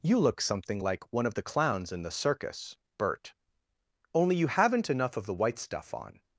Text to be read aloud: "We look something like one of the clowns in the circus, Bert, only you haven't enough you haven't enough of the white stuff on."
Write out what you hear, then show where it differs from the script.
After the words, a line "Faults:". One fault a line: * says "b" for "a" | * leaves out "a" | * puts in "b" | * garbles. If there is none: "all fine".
"You look something like one of the clowns in the circus, Bert, only you haven't enough of the white stuff on."
Faults:
* says "You" for "We"
* leaves out "you haven't enough"